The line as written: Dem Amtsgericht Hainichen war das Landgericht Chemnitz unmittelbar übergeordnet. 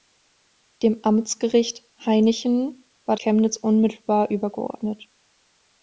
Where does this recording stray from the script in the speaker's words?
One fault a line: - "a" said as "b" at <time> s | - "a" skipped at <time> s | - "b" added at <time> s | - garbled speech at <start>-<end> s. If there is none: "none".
- "das Landgericht" skipped at 3.1 s